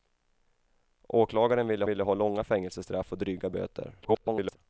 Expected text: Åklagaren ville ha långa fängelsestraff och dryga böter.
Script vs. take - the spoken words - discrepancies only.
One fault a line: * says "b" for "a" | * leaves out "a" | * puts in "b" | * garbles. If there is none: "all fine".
* puts in "ville"
* garbles